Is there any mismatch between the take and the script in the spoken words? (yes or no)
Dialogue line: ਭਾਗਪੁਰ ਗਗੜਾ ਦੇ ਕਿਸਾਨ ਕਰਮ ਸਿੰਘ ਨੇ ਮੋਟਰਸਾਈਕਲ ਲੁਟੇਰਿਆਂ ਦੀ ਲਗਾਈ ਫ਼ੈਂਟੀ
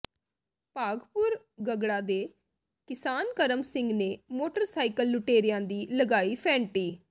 no